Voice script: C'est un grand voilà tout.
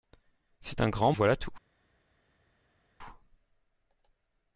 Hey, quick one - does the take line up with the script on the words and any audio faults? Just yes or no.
yes